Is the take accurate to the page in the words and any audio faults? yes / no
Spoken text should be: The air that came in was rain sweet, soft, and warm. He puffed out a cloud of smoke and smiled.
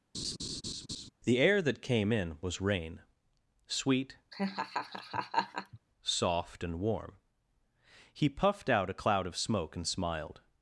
no